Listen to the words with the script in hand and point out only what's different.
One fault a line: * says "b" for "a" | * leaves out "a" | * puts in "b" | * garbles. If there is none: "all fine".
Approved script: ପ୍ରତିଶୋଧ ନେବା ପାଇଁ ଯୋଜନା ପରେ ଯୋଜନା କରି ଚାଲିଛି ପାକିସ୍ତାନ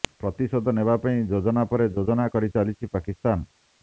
all fine